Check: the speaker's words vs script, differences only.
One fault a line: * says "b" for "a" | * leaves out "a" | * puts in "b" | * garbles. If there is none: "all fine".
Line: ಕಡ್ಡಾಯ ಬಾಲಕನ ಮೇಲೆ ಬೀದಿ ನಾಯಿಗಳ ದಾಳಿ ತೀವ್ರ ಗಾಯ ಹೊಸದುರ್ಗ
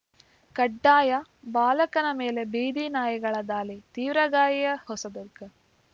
all fine